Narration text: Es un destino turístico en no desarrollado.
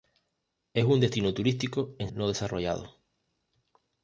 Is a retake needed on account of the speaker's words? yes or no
no